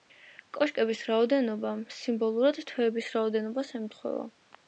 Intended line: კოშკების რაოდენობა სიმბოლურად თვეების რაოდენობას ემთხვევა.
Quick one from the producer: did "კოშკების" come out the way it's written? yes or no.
yes